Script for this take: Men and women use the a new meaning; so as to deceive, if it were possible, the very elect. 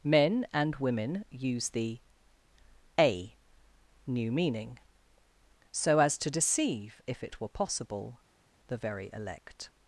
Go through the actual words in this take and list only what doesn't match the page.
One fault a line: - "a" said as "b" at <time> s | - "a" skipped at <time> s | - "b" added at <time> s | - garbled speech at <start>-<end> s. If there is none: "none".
none